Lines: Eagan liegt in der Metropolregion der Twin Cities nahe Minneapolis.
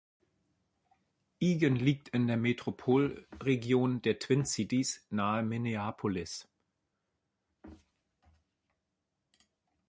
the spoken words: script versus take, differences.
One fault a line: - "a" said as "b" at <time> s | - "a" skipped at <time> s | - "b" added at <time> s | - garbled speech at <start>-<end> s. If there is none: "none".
none